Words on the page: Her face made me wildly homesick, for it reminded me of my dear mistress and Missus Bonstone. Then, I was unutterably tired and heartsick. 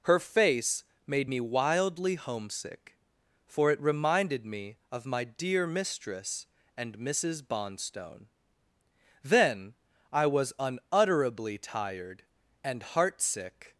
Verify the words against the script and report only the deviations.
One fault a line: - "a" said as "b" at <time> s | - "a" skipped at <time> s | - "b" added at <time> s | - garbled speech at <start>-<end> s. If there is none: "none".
none